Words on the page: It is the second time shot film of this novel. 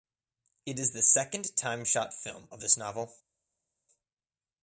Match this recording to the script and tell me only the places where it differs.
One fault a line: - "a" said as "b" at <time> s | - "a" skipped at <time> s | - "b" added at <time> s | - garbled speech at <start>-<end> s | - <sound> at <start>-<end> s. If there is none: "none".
none